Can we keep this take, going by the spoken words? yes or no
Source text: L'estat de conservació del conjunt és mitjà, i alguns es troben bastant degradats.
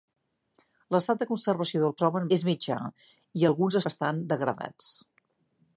no